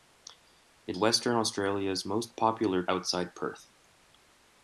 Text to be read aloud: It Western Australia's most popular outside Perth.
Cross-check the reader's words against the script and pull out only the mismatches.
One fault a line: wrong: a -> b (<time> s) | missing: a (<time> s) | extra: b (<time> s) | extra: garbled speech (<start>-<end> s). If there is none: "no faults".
no faults